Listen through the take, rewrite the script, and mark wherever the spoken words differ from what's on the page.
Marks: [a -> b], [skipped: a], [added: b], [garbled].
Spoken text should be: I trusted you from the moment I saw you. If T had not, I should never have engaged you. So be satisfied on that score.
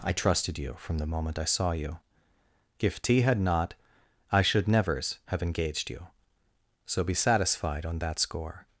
I trusted you from the moment I saw you. If T had not, I should [never -> nevers] have engaged you. So be satisfied on that score.